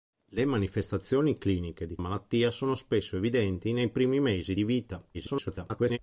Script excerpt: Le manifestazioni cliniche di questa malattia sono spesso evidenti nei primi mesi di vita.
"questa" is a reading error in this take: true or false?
true